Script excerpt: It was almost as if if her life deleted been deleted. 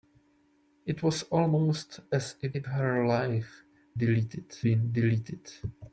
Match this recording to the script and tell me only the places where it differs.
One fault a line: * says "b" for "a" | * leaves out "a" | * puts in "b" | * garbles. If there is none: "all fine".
all fine